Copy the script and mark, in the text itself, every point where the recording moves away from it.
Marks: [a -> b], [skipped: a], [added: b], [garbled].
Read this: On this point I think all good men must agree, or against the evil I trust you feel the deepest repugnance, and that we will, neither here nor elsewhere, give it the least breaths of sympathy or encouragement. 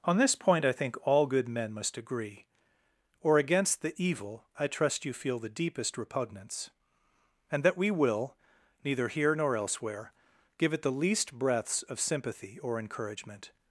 On this point I think all good men must agree, or against the evil I trust you feel the deepest repugnance, and that we will, neither here nor elsewhere, give it the least breaths of sympathy or encouragement.